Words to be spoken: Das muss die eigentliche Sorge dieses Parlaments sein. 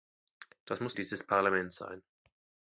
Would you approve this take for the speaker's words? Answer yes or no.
no